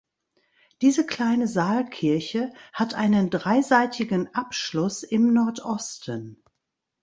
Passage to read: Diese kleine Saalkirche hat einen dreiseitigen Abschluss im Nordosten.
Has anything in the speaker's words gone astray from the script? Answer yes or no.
no